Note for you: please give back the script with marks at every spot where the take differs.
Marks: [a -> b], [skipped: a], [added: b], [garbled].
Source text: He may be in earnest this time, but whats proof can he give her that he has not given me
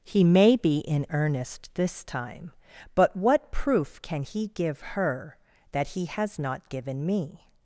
He may be in earnest this time, but [whats -> what] proof can he give her that he has not given me